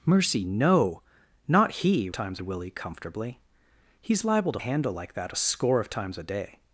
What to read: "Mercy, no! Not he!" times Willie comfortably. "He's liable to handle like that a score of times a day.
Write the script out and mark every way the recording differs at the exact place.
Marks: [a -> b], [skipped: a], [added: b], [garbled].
"Mercy, no! Not he!" times Willie comfortably. "He's liable to handle like that a score of times a day.